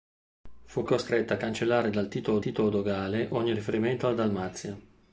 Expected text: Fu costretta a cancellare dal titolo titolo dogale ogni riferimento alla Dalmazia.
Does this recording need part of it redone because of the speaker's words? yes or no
no